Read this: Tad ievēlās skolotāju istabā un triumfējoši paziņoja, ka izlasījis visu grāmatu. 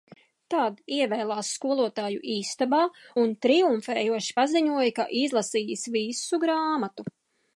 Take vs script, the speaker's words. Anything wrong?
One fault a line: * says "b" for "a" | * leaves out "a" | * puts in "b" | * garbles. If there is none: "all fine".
all fine